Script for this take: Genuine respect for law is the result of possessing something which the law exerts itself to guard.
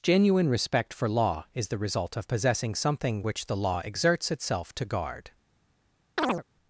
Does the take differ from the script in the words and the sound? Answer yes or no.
yes